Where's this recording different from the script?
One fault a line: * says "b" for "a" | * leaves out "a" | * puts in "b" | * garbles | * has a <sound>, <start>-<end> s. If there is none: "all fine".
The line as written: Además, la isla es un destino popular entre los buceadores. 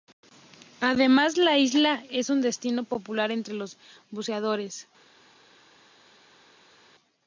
all fine